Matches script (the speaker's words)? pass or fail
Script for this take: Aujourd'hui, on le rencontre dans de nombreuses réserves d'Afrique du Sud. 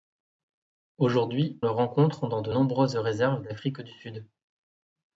fail